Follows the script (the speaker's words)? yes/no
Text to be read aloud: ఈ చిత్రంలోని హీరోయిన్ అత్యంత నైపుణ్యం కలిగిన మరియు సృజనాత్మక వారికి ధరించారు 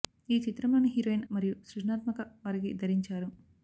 no